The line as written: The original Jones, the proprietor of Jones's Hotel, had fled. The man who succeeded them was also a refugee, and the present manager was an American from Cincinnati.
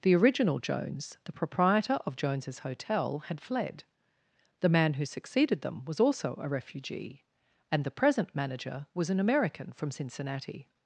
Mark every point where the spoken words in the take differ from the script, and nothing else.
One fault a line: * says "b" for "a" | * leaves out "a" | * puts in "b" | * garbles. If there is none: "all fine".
all fine